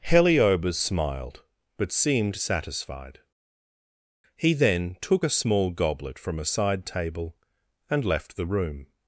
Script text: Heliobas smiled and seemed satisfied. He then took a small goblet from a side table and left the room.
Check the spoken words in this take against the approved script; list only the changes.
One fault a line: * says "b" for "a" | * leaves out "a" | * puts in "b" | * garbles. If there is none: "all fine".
* says "but" for "and"